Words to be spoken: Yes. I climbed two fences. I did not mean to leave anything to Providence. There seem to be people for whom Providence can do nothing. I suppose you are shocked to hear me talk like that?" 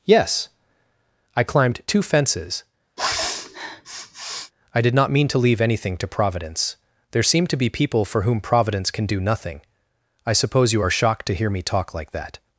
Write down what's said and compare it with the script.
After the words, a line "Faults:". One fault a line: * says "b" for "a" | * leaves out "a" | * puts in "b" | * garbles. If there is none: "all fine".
Yes. I climbed two fences. I did not mean to leave anything to Providence. There seem to be people for whom Providence can do nothing. I suppose you are shocked to hear me talk like that?"
Faults:
all fine